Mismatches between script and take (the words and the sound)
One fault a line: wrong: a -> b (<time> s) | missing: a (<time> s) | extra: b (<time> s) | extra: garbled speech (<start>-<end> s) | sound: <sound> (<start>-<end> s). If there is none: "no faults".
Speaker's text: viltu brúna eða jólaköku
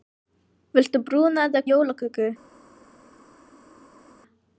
no faults